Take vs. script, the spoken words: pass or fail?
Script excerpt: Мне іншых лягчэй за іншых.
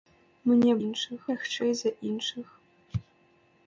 pass